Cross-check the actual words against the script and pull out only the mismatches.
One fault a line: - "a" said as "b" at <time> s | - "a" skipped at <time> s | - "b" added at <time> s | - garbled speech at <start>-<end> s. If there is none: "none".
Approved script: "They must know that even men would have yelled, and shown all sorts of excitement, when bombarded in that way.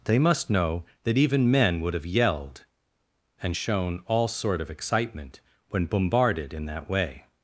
- "sorts" said as "sort" at 4.3 s